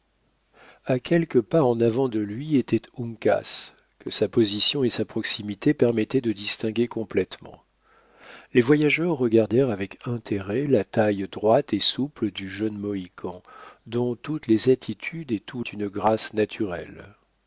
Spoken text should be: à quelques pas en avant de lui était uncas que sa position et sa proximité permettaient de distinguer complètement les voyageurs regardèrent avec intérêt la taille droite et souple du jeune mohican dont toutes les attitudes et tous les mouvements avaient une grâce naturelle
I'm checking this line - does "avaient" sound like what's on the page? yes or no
no